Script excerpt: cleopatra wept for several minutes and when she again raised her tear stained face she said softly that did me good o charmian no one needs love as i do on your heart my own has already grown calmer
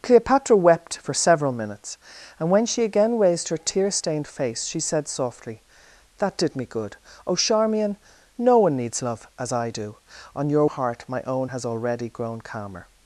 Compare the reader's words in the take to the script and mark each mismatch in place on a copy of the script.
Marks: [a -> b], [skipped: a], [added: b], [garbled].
cleopatra wept for several minutes and when she again raised her tear stained face she said softly that did me good o charmian no one needs love as i do on your heart my own has already grown calmer